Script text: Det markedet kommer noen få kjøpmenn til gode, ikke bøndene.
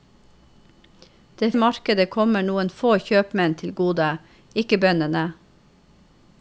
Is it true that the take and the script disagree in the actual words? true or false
false